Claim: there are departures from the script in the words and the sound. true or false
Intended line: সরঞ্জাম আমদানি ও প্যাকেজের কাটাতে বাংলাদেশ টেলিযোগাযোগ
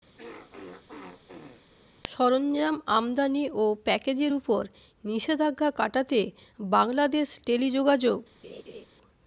true